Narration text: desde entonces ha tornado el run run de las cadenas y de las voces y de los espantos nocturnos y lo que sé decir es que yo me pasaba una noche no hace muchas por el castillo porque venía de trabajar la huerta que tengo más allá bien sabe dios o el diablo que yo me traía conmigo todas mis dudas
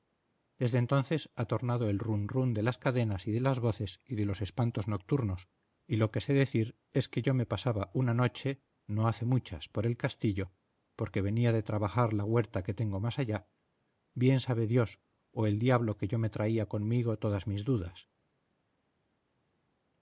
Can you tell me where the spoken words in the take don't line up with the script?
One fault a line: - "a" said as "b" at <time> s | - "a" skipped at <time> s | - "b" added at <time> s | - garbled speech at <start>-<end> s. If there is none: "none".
none